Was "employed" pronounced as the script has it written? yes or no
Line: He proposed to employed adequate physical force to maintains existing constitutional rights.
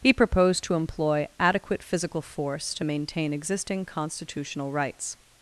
no